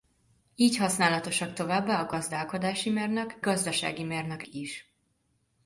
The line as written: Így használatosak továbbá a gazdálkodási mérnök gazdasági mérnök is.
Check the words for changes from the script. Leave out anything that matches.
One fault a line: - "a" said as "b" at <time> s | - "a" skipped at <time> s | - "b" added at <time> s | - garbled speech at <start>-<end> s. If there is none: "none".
none